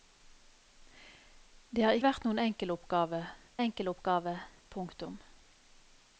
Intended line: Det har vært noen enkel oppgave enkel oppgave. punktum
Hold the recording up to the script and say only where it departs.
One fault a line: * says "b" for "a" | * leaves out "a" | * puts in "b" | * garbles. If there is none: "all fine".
all fine